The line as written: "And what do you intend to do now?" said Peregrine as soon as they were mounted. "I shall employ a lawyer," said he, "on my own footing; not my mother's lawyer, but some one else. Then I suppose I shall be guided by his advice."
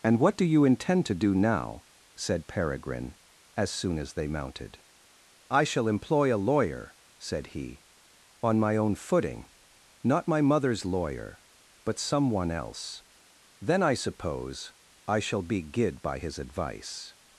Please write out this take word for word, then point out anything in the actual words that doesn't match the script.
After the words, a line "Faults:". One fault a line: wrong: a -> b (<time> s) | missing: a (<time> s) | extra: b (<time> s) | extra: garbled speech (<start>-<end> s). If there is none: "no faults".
"And what do you intend to do now?" said Peregrine as soon as they mounted. "I shall employ a lawyer," said he, "on my own footing; not my mother's lawyer, but some one else. Then I suppose I shall be guid by his advice."
Faults:
missing: were (4.3 s)
wrong: guided -> guid (15.6 s)